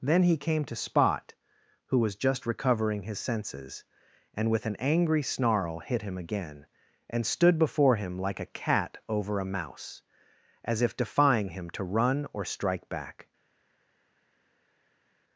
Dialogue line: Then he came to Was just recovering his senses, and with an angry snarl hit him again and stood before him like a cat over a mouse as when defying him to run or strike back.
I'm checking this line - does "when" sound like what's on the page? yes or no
no